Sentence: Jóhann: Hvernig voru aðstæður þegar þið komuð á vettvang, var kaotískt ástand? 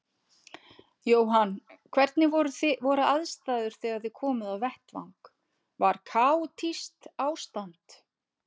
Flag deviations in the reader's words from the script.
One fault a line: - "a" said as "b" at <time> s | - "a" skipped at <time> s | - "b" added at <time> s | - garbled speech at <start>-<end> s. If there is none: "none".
none